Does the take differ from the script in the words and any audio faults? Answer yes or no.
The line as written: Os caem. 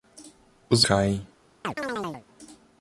yes